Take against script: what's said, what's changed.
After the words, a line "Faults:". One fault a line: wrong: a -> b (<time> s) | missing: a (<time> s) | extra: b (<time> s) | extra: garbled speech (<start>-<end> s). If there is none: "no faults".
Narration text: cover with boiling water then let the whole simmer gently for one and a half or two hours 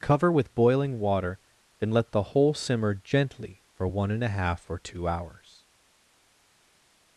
cover with boiling water then let the whole simmer gently for one and a half or two hours
Faults:
no faults